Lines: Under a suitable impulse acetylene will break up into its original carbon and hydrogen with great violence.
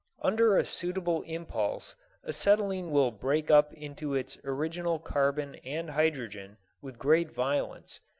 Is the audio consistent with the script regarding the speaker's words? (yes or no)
yes